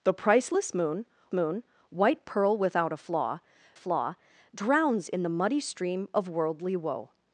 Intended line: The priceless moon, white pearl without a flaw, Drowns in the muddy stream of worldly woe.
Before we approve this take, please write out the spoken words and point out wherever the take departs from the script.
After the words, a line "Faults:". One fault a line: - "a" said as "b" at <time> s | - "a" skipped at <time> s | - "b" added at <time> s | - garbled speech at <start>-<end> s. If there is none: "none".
The priceless moon moon, white pearl without a flaw flaw, Drowns in the muddy stream of worldly woe.
Faults:
- "moon" added at 1.3 s
- "flaw" added at 3.7 s